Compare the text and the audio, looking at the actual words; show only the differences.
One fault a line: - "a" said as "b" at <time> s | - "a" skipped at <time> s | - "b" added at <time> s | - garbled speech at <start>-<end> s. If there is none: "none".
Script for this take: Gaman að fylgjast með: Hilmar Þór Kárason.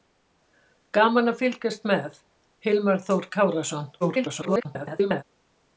- garbled speech at 4.0-5.2 s